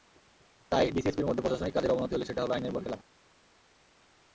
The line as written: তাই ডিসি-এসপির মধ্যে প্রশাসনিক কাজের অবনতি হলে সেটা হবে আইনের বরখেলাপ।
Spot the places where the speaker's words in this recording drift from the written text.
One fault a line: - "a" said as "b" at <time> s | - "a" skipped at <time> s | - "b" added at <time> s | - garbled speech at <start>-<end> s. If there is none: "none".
none